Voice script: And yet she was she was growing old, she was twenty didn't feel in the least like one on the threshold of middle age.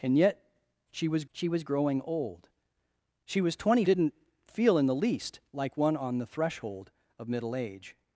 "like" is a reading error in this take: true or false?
false